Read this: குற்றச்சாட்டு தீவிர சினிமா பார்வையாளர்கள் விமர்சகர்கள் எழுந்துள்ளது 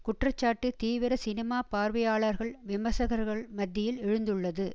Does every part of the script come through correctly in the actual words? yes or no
no